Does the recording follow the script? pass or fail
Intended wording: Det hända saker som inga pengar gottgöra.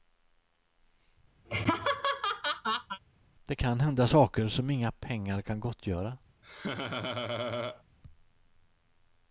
fail